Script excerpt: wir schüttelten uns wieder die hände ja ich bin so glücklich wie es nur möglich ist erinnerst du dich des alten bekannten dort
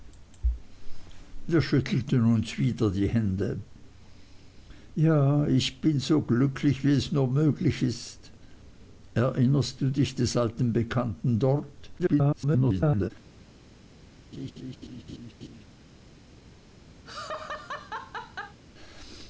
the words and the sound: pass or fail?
fail